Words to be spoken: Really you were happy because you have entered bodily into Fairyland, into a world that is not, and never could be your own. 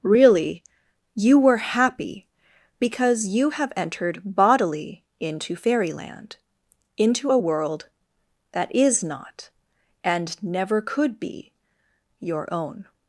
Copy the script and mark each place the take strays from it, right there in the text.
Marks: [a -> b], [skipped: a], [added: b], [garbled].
Really you were happy because you have entered bodily into Fairyland, into a world that is not, and never could be your own.